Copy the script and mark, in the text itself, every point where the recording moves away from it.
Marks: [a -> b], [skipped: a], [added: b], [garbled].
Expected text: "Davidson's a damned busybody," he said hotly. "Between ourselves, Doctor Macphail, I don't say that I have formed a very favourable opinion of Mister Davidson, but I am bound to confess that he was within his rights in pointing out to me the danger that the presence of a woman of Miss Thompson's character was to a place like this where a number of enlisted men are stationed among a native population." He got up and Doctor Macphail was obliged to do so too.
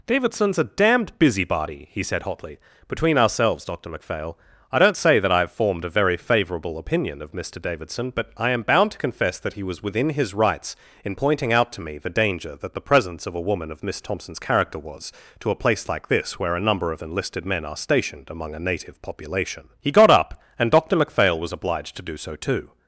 "Davidson's a damned busybody," he said hotly. "Between ourselves, Doctor Macphail, I don't say that I have formed a very favourable opinion of Mister Davidson, but I am bound to confess that he was within his rights in pointing out to me the danger that the presence of a woman of Miss Thompson's character was to a place like this where a number of enlisted men are stationed among a native population." He got up and Doctor Macphail was obliged to do so too.